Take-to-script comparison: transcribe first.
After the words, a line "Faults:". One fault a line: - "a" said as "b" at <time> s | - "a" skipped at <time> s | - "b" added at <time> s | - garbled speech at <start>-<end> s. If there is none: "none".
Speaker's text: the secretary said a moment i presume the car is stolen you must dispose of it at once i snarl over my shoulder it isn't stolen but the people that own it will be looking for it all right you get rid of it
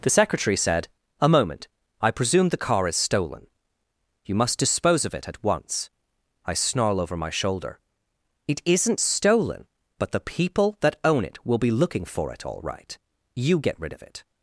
the secretary said a moment i presume the car is stolen you must dispose of it at once i snarl over my shoulder it isn't stolen but the people that own it will be looking for it all right you get rid of it
Faults:
none